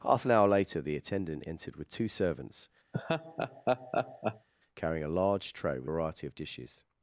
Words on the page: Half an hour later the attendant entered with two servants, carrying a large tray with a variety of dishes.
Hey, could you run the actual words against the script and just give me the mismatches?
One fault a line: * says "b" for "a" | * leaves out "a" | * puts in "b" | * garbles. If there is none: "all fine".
* leaves out "a"